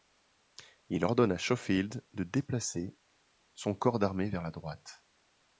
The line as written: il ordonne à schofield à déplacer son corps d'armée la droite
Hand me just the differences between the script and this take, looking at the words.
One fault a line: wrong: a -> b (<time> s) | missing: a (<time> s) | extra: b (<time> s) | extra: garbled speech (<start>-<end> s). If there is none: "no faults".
wrong: à -> de (2.1 s)
extra: vers (4.3 s)